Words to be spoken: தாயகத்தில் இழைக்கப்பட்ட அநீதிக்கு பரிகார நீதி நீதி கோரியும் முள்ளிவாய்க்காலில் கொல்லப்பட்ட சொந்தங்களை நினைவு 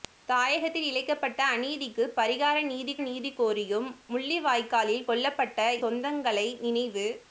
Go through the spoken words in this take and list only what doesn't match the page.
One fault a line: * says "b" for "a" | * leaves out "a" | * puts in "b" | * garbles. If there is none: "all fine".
all fine